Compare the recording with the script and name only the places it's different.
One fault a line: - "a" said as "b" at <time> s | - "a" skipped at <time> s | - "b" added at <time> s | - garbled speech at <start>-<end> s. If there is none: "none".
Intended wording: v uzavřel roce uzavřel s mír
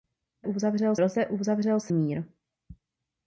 none